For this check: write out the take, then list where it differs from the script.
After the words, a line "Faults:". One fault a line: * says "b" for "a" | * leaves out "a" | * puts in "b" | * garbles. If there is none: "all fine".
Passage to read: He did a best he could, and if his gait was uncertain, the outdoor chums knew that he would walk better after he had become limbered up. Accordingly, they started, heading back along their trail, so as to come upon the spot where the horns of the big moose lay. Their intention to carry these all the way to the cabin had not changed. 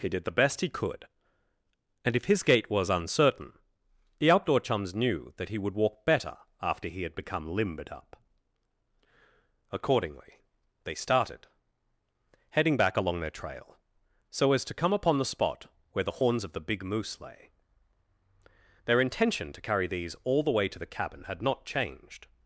He did the best he could, and if his gait was uncertain, the outdoor chums knew that he would walk better after he had become limbered up. Accordingly, they started, heading back along their trail, so as to come upon the spot where the horns of the big moose lay. Their intention to carry these all the way to the cabin had not changed.
Faults:
* says "the" for "a"